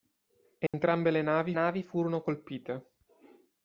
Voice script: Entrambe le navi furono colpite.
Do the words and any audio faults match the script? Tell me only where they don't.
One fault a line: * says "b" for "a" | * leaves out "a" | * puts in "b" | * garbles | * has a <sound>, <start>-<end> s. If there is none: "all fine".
* has a dropout, 0.7-0.7 s
* puts in "navi"